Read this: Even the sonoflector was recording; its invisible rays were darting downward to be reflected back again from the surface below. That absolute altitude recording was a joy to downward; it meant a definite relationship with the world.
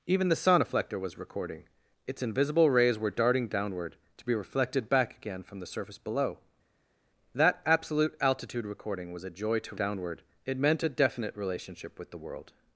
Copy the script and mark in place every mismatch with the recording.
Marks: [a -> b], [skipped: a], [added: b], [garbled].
Even the sonoflector was recording; its invisible rays were darting downward to be reflected back again from the surface below. That absolute altitude recording was a joy to downward; it meant a definite relationship with the world.